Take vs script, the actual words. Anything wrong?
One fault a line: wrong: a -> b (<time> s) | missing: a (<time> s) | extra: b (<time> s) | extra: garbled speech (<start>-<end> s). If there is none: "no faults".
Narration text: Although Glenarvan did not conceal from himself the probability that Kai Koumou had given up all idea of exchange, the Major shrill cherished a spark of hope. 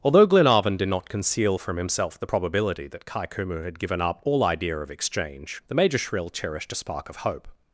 no faults